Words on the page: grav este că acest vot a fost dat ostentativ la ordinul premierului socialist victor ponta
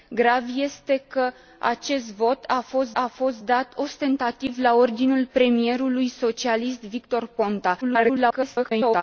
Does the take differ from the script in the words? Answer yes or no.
yes